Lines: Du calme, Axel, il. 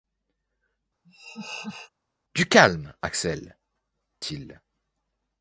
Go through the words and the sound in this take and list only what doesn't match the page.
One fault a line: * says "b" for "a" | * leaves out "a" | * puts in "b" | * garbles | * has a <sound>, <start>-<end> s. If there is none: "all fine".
* has a laugh, 1.0-1.9 s